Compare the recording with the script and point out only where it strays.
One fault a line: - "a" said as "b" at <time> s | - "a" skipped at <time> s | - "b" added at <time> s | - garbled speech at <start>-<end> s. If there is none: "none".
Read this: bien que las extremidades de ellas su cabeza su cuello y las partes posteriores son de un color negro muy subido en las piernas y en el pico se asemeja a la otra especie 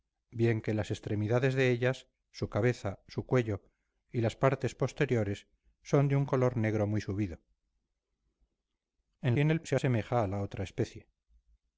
- "las piernas" skipped at 9.3 s
- "pico" skipped at 9.6 s